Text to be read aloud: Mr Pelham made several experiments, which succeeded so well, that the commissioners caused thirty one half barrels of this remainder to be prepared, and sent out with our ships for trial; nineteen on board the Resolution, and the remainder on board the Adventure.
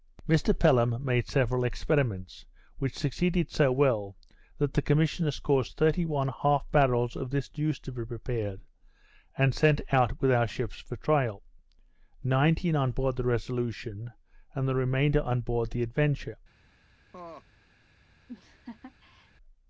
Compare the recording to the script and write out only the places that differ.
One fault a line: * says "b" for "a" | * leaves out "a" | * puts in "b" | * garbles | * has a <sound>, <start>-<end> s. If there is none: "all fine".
* says "juice" for "remainder"
* has a laugh, 17.1-17.4 s
* has a laugh, 18.3-19.3 s